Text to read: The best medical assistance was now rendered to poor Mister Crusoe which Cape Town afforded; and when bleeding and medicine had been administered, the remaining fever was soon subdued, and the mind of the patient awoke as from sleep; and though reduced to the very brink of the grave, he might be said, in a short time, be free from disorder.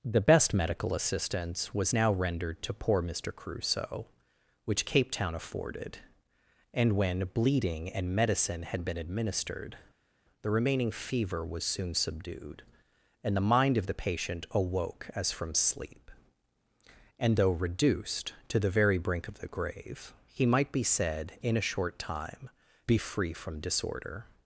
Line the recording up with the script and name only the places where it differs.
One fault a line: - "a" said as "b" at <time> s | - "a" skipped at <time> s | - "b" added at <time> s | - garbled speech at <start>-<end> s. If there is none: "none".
none